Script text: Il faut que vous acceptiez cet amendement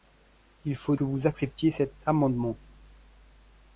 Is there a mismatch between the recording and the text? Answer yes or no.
no